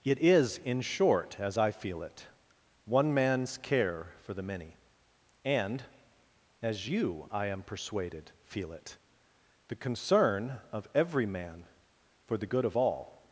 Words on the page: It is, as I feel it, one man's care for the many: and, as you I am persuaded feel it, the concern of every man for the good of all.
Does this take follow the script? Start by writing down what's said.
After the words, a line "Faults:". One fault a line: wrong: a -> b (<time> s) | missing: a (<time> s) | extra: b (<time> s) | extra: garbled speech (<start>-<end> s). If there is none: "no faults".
It is, in short, as I feel it, one man's care for the many: and, as you I am persuaded feel it, the concern of every man for the good of all.
Faults:
extra: in short (0.6 s)